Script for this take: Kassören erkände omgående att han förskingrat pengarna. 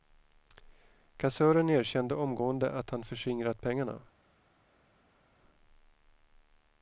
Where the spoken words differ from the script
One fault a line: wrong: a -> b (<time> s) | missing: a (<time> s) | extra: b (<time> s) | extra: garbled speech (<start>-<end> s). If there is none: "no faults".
no faults